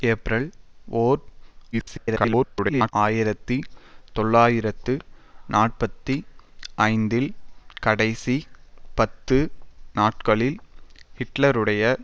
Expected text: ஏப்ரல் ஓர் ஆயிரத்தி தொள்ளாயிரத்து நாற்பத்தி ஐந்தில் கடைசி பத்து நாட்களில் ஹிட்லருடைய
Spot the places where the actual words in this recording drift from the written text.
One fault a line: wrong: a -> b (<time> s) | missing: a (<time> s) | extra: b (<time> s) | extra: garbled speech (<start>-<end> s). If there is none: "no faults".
extra: garbled speech (1.7-2.9 s)